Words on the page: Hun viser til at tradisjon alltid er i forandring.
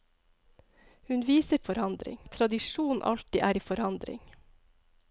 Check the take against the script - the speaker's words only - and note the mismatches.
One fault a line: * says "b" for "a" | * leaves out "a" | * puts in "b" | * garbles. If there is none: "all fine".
* says "forandring" for "til"